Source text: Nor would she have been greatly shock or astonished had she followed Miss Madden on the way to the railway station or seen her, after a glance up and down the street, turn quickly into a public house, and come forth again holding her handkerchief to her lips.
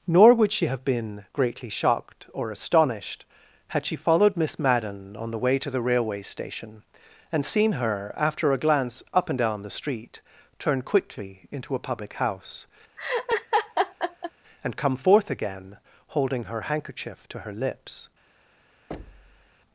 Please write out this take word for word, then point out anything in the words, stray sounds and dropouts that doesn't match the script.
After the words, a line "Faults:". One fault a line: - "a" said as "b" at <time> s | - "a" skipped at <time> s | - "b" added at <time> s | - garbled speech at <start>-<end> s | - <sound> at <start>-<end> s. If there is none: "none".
Nor would she have been greatly shocked or astonished had she followed Miss Madden on the way to the railway station and seen her, after a glance up and down the street, turn quickly into a public house, and come forth again holding her handkerchief to her lips.
Faults:
- "shock" said as "shocked" at 1.7 s
- "or" said as "and" at 7.3 s
- laugh at 13.0-14.3 s
- thud at 18.9-19.6 s